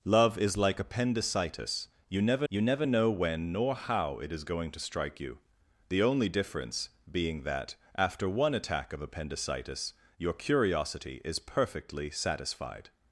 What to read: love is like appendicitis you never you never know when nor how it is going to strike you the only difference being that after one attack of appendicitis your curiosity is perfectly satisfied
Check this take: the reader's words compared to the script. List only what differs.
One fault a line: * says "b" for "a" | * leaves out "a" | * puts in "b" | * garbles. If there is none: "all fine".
all fine